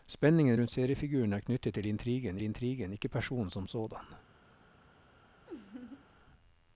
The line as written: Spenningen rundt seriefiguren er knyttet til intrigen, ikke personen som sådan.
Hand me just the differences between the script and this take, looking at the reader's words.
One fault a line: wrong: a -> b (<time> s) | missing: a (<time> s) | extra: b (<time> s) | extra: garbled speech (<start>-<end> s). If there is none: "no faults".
extra: intrigen (2.4 s)